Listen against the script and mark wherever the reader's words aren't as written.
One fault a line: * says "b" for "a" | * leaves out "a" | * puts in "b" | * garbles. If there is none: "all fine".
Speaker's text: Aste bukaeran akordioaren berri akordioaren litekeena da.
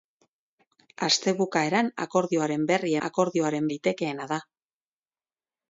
all fine